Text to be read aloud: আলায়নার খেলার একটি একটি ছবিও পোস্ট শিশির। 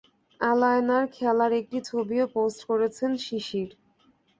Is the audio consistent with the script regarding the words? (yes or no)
no